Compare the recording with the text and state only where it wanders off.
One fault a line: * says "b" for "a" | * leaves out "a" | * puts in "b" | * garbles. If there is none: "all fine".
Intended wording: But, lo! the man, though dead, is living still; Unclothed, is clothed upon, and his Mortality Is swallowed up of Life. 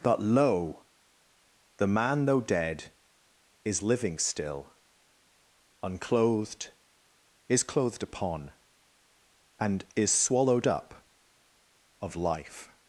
* leaves out "his Mortality"